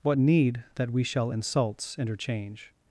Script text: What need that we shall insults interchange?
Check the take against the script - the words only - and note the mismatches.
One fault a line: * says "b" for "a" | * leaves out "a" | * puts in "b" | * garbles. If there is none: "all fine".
all fine